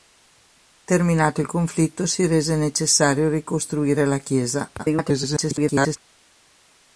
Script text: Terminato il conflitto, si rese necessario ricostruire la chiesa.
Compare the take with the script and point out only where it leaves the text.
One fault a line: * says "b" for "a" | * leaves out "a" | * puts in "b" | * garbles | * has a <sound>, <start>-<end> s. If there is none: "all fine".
* garbles